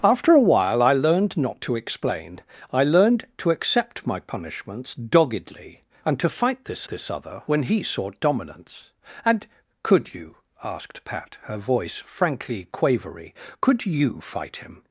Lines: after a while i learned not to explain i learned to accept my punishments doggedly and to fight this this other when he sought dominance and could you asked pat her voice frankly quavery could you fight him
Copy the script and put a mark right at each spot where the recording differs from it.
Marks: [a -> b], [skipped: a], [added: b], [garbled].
after a while i learned not to explain i learned to accept my punishments doggedly and to fight this this other when he sought dominance and could you asked pat her voice frankly quavery could you fight him